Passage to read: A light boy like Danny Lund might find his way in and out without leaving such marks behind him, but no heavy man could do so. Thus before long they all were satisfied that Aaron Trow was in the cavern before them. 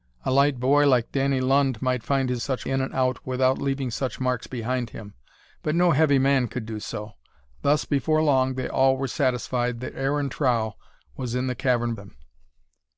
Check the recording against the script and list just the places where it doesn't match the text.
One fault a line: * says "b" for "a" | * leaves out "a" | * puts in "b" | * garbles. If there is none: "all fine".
* says "such" for "way"
* leaves out "before"